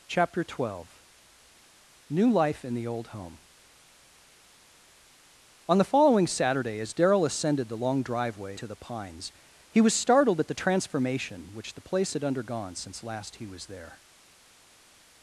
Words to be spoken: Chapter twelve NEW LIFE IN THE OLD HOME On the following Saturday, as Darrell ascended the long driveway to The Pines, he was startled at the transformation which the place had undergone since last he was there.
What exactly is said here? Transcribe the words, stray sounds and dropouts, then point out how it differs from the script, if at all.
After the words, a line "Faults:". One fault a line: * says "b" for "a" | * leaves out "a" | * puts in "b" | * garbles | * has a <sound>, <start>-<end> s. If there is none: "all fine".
Chapter twelve NEW LIFE IN THE OLD HOME On the following Saturday, as Darrell ascended the long driveway to The Pines, he was startled at the transformation which the place had undergone since last he was there.
Faults:
all fine